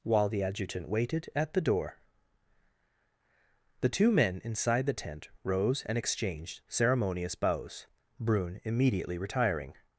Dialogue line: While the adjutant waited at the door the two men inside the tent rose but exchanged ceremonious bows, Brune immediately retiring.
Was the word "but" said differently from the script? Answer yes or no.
yes